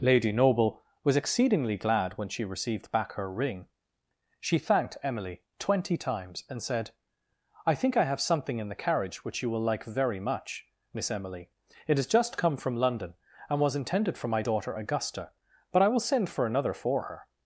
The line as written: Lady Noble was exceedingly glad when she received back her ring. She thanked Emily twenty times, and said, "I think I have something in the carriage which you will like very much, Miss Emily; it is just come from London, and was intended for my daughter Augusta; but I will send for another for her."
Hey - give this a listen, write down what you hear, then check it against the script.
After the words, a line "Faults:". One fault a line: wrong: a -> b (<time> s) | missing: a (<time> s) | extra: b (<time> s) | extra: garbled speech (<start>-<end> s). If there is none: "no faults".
Lady Noble was exceedingly glad when she received back her ring. She thanked Emily twenty times, and said, "I think I have something in the carriage which you will like very much, Miss Emily; it has just come from London, and was intended for my daughter Augusta; but I will send for another for her."
Faults:
wrong: is -> has (12.0 s)